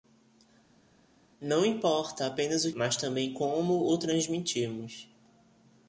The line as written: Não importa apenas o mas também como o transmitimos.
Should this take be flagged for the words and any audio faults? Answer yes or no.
no